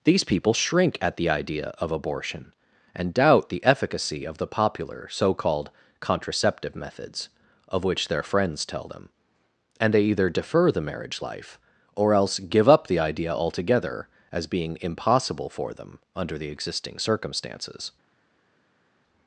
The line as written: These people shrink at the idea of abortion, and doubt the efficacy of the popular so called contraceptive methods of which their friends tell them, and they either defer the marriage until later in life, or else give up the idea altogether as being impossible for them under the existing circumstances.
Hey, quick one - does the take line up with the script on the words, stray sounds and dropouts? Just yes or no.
no